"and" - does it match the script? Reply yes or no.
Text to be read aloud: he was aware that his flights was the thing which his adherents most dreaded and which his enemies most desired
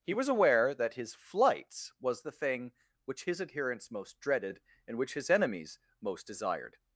yes